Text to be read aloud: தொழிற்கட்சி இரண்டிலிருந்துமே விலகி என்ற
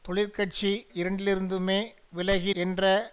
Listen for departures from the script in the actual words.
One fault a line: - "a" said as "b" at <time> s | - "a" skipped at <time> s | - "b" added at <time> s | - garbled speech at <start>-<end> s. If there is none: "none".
none